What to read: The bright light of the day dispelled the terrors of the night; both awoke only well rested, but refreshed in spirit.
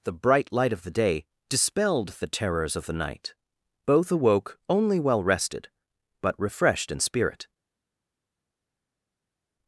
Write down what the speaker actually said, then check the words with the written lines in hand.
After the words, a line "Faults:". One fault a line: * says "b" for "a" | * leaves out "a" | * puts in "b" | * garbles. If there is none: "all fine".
The bright light of the day dispelled the terrors of the night; both awoke only well rested, but refreshed in spirit.
Faults:
all fine